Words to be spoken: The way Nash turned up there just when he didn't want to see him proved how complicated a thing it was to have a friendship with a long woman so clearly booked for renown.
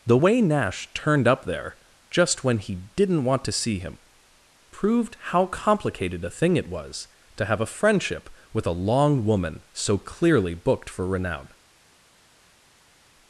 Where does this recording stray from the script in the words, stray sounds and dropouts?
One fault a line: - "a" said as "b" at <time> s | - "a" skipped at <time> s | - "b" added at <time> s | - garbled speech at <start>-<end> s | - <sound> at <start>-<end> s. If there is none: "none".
none